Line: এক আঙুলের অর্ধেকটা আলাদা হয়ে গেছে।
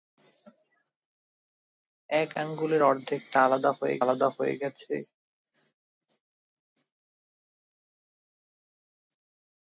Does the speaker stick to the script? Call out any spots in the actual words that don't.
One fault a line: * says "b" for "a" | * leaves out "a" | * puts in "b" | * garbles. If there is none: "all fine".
* puts in "আলাদা হয়ে"